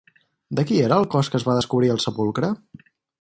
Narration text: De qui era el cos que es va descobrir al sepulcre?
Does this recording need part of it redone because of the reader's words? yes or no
no